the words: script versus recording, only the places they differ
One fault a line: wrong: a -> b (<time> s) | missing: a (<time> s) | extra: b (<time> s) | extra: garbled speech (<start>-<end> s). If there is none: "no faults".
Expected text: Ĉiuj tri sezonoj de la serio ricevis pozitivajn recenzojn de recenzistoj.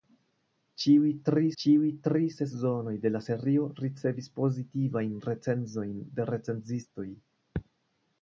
extra: ĉiuj tri (1.6 s)